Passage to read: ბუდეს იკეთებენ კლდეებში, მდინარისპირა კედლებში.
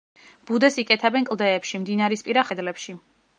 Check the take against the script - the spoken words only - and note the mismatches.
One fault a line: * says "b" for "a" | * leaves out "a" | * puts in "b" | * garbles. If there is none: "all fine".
all fine